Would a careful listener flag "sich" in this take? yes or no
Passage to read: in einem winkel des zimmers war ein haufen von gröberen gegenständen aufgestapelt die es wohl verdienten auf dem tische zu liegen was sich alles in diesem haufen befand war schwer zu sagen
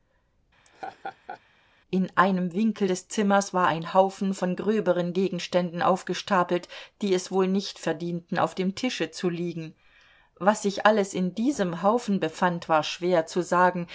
no